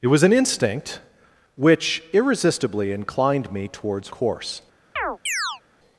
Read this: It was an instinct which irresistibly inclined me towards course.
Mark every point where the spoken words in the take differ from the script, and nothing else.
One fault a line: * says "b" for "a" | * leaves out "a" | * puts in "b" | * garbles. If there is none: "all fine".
all fine